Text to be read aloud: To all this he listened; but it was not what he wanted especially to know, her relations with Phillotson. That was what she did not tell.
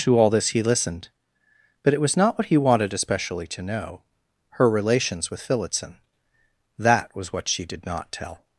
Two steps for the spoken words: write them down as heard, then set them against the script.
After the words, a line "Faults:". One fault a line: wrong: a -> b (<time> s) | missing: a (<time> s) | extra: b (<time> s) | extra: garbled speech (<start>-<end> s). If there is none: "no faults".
To all this he listened; but it was not what he wanted especially to know, her relations with Phillotson. That was what she did not tell.
Faults:
no faults